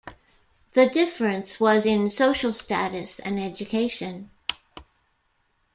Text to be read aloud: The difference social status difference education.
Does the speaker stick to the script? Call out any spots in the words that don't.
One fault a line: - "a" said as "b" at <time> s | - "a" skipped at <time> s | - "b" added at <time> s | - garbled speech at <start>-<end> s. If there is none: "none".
- "was in" added at 1.6 s
- "difference" said as "and" at 3.2 s